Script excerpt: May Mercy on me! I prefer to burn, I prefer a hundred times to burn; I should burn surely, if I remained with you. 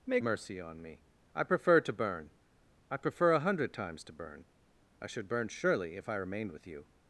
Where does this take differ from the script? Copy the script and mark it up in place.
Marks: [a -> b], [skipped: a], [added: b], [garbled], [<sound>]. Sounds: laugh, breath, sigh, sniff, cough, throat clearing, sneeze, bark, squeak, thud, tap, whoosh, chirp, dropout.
May Mercy on me! I prefer to burn, I prefer a hundred times to burn; I should burn surely, if I remained with you.